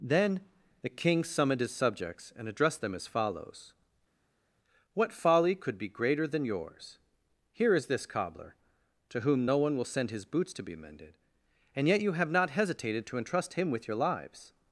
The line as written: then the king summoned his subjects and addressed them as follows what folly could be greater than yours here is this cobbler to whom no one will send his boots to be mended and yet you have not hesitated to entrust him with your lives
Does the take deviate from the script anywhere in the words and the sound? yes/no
no